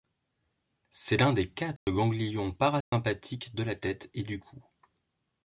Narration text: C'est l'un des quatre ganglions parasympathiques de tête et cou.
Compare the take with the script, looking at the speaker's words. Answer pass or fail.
fail